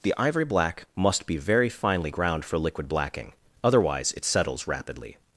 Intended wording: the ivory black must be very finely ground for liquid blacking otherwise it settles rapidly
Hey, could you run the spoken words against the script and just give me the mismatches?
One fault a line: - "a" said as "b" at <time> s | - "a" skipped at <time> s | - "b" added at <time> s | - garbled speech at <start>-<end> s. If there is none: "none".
none